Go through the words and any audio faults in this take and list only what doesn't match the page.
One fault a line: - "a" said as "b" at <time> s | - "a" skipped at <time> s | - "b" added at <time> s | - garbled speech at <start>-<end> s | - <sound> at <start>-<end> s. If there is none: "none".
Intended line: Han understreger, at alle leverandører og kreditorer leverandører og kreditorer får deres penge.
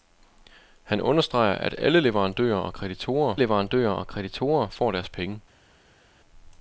none